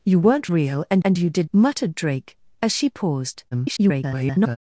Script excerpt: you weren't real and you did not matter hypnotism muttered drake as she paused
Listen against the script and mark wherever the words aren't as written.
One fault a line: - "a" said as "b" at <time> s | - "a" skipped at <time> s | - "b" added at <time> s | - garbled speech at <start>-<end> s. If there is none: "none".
- "and" added at 1.0 s
- "not matter hypnotism" skipped at 1.5 s
- garbled speech at 3.5-4.6 s